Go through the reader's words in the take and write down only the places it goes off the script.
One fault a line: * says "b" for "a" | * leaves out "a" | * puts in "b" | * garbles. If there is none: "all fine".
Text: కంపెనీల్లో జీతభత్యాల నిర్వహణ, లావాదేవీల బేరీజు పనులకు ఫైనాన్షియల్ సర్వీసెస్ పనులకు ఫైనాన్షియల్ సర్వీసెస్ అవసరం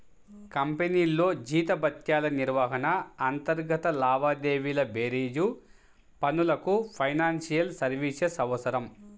* puts in "అంతర్గత"
* leaves out "పనులకు ఫైనాన్షియల్ సర్వీసెస్"